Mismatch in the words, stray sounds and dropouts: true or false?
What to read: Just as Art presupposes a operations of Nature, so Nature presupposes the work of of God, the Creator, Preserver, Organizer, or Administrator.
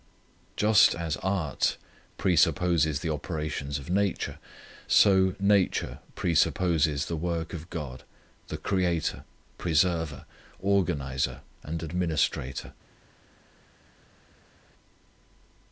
true